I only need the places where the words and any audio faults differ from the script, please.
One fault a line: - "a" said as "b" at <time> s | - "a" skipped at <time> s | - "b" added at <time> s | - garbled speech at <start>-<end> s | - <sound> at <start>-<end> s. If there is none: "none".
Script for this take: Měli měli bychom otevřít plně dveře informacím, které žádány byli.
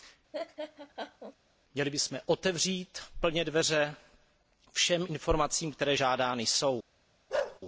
- laugh at 0.3-1.4 s
- "měli" skipped at 1.9 s
- "všem" added at 4.7 s
- "byli" said as "jsou" at 6.5 s
- bark at 7.3-7.6 s